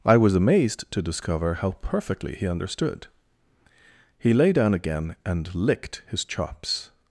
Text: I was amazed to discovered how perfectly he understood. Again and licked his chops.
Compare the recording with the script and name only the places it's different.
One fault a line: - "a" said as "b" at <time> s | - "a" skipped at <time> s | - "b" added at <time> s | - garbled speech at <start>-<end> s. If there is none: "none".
- "discovered" said as "discover" at 1.0 s
- "He lay down" added at 4.2 s